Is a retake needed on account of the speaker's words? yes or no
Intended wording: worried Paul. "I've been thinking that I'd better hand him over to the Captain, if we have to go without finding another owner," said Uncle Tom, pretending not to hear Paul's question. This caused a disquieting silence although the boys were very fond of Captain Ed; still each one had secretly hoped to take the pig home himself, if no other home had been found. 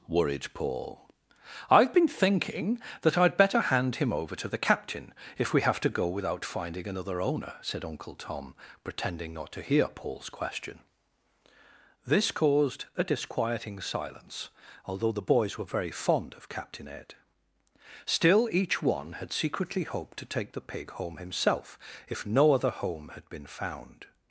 no